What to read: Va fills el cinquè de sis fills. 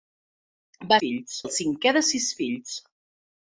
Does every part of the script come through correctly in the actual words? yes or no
yes